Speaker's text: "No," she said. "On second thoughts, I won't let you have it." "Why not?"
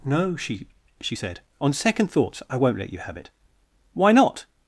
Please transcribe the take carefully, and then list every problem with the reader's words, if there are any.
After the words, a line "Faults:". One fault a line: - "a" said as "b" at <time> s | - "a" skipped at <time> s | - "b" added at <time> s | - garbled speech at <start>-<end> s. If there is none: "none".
"No," she she said. "On second thoughts, I won't let you have it." "Why not?"
Faults:
- "she" added at 1.0 s